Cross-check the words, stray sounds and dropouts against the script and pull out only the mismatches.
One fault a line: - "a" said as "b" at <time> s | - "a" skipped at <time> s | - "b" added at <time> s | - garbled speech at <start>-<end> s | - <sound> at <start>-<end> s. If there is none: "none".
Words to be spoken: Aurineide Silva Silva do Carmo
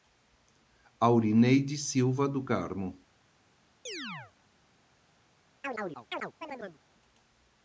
- "Silva" skipped at 2.3 s
- chirp at 3.9-4.3 s
- chirp at 5.6-6.8 s